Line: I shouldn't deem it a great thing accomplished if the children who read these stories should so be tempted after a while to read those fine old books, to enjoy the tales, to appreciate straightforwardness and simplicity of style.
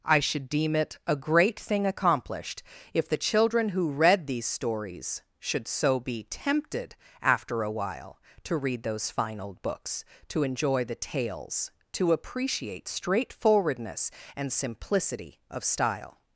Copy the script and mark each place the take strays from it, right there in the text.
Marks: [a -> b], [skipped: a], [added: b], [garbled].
I [shouldn't -> should] deem it a great thing accomplished if the children who read these stories should so be tempted after a while to read those fine old books, to enjoy the tales, to appreciate straightforwardness and simplicity of style.